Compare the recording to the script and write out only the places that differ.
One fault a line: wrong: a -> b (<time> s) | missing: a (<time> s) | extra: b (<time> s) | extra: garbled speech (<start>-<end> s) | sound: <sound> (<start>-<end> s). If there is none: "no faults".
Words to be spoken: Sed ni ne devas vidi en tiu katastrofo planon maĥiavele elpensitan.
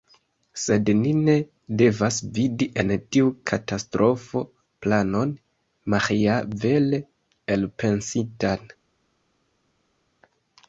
no faults